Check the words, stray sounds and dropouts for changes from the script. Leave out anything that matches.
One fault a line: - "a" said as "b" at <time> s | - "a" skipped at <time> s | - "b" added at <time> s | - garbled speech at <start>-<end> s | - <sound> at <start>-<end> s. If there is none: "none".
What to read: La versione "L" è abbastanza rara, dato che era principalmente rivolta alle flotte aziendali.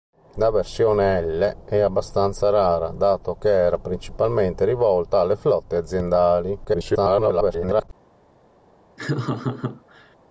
- garbled speech at 6.6-7.9 s
- laugh at 9.0-10.2 s